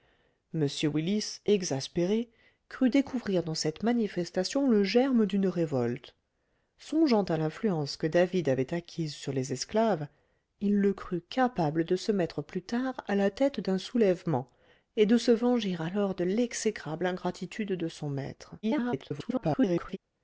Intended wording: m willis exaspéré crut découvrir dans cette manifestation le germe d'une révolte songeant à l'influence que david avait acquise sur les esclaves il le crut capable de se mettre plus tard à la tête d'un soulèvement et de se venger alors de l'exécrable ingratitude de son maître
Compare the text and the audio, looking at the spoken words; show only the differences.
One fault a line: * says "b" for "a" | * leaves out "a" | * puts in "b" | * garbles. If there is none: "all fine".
* garbles